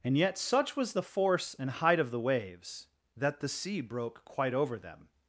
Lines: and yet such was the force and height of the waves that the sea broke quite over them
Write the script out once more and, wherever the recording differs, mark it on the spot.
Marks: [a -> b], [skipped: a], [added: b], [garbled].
and yet such was the force and height of the waves that the sea broke quite over them